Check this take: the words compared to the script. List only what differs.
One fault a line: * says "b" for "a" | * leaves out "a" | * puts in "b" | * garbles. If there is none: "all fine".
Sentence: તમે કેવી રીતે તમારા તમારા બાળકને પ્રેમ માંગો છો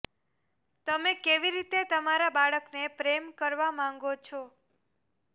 * leaves out "તમારા"
* puts in "કરવા"